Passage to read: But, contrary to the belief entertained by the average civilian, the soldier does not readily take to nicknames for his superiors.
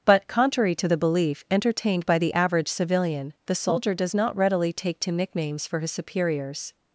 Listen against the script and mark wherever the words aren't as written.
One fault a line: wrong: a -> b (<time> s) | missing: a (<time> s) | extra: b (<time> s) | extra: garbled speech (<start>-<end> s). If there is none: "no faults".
no faults